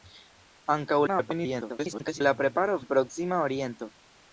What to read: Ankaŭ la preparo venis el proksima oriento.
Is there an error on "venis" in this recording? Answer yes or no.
yes